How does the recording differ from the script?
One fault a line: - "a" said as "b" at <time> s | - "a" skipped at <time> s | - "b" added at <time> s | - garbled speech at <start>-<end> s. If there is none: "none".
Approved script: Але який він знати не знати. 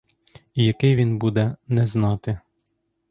- "Але" said as "І" at 0.6 s
- "знати" said as "буде" at 1.2 s